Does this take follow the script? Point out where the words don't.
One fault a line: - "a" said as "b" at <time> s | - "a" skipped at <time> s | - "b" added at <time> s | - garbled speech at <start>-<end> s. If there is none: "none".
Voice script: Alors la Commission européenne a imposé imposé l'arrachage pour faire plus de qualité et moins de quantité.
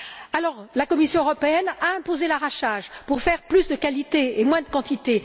- "imposé" skipped at 2.3 s